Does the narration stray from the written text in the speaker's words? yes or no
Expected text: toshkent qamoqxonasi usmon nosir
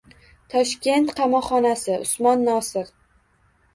no